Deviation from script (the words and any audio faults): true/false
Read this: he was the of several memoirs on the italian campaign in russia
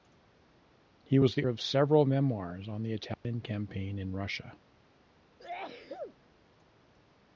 true